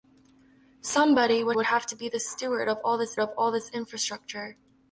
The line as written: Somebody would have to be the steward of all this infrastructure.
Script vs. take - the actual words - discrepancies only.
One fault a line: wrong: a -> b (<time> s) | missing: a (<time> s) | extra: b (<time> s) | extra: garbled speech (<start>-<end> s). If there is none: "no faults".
extra: would (1.5 s)
extra: of all this (3.2 s)